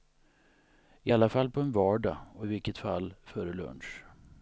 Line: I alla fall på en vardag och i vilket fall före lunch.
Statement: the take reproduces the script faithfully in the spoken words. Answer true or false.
true